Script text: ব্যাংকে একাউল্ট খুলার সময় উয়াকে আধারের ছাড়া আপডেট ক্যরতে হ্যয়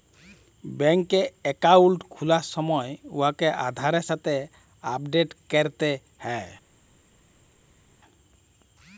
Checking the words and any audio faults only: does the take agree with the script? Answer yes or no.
no